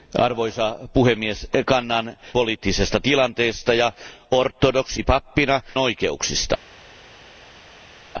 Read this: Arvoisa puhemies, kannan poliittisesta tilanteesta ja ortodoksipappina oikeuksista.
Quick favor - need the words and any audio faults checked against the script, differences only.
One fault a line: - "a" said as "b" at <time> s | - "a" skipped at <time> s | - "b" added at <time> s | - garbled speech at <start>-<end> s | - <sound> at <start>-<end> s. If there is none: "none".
none